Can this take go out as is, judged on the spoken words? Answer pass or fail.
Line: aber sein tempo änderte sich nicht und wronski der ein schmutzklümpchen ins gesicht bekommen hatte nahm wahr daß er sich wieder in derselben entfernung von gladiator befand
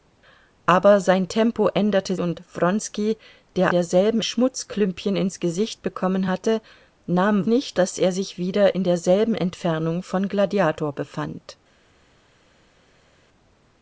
fail